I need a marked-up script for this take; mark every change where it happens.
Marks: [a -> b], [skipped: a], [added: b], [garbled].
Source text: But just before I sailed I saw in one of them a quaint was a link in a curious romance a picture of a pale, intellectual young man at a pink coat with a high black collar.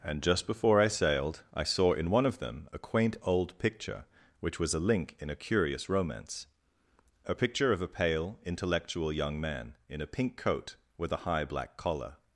[But -> And] just before I sailed I saw in one of them a quaint [added: old picture which] was a link in a curious romance a picture of a pale, intellectual young man [at -> in] a pink coat with a high black collar.